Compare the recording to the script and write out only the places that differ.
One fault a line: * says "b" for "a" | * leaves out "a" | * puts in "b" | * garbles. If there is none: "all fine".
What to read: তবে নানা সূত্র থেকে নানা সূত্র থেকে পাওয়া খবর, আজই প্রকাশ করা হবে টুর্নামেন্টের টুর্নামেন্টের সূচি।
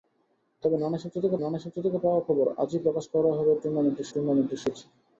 all fine